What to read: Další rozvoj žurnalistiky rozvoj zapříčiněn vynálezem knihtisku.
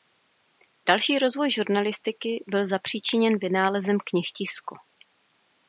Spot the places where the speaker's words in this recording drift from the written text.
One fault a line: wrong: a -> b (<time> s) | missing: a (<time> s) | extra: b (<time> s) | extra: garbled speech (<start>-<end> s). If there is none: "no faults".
wrong: rozvoj -> byl (2.5 s)